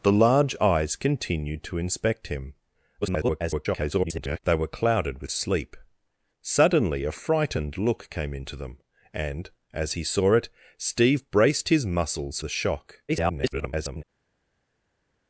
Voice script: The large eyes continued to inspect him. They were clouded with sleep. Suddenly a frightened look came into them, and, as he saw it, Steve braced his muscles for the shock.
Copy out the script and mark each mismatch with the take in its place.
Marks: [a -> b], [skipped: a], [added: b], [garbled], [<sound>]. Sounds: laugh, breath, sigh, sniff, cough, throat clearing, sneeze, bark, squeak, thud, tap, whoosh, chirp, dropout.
The large eyes continued to inspect him. [garbled] They were clouded with sleep. Suddenly a frightened look came into them, and, as he saw it, Steve braced his muscles [skipped: for] the shock. [garbled]